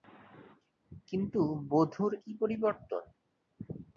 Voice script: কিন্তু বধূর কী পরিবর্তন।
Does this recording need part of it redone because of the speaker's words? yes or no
no